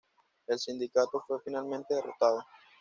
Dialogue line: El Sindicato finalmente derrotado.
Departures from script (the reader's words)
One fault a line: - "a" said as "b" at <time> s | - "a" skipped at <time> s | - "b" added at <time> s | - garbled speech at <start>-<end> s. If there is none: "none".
- "fue" added at 1.3 s